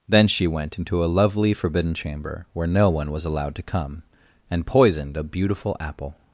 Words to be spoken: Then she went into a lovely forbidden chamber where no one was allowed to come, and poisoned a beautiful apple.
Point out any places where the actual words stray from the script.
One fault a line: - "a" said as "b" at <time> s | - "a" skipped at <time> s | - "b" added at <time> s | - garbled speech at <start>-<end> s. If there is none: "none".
none